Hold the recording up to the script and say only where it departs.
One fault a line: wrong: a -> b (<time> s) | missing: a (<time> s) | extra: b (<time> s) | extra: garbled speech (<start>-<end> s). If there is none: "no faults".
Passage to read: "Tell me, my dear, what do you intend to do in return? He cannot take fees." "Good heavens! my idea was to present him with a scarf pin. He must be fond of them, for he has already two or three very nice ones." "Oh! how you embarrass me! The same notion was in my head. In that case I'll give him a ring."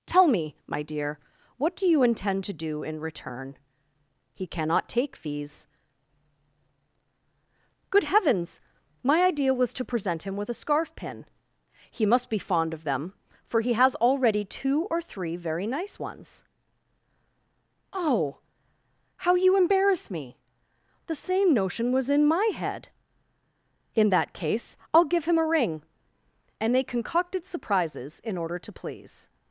extra: And they concocted surprises in order to please (26.6 s)